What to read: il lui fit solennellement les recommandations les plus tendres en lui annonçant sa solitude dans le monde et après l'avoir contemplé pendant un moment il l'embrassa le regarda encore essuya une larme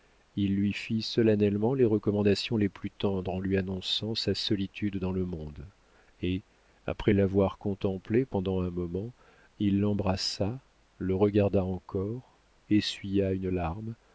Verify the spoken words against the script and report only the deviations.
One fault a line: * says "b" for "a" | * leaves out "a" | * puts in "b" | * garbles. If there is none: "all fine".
all fine